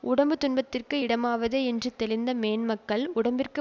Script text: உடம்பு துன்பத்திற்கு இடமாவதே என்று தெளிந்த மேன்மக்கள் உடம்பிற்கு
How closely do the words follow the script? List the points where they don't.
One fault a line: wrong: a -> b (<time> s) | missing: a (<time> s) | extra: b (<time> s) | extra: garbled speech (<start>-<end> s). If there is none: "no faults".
no faults